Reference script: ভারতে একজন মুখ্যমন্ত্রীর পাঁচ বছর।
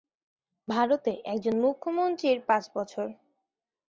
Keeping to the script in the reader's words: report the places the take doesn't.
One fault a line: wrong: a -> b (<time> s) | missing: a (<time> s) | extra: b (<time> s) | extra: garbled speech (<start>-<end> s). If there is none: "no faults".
no faults